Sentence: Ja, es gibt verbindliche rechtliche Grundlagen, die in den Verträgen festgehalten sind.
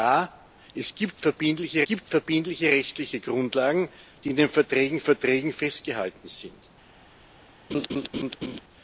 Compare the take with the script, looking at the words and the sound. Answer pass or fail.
fail